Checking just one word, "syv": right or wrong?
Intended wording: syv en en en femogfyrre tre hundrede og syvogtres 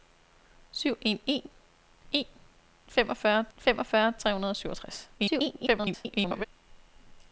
right